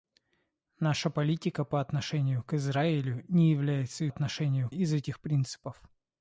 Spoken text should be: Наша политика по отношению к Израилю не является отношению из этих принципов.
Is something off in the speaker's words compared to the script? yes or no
no